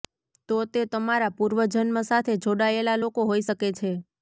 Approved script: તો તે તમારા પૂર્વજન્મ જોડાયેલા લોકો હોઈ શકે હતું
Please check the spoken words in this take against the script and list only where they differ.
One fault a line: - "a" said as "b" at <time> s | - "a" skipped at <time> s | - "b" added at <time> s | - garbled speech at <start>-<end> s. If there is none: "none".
- "સાથે" added at 2.1 s
- "હતું" said as "છે" at 3.7 s